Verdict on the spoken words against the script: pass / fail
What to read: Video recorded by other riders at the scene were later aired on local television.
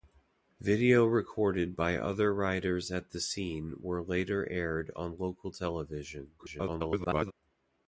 fail